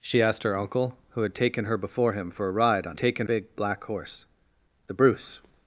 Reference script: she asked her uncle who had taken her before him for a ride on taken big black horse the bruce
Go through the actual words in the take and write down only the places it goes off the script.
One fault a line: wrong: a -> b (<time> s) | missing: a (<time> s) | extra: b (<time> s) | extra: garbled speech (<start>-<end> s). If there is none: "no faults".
no faults